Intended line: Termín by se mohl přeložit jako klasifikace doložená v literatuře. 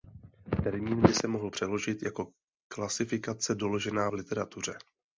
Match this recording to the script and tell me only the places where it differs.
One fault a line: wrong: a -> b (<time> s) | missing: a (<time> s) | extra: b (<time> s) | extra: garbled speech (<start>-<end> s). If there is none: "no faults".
no faults